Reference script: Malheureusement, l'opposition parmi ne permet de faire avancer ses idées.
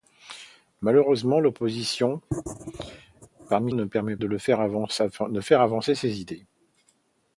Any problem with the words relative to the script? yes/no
no